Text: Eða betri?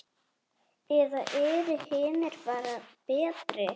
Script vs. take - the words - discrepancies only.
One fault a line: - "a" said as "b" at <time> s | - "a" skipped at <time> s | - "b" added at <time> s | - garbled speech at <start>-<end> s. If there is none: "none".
- "eru hinir bara" added at 1.4 s